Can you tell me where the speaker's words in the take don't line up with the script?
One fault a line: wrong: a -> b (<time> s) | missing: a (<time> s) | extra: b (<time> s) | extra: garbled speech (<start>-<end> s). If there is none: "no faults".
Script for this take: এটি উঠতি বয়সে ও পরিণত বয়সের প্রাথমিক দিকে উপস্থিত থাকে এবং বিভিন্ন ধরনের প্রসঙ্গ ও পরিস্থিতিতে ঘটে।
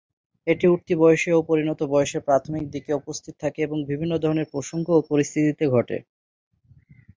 no faults